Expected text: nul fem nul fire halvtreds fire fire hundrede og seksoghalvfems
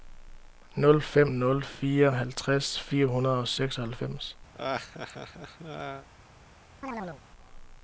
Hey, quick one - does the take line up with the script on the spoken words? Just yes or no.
no